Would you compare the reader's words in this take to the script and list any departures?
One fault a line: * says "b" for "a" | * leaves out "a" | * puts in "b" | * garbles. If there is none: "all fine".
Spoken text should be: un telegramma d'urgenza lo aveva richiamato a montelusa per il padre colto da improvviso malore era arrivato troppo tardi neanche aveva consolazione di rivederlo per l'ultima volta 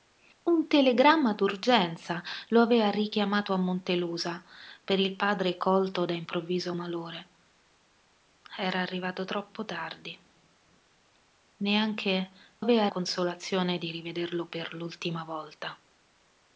all fine